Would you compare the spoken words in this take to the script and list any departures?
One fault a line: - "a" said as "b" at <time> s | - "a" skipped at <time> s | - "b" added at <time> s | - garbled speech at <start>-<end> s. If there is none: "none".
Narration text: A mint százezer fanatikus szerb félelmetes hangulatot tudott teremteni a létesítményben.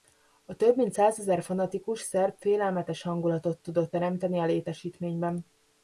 - "több" added at 0.6 s